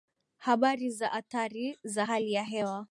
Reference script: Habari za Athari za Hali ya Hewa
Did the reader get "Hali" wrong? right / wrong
right